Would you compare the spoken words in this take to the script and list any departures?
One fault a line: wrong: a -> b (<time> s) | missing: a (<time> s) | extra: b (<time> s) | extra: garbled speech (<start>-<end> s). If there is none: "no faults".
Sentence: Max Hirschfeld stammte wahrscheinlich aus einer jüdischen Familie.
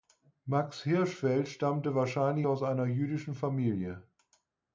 no faults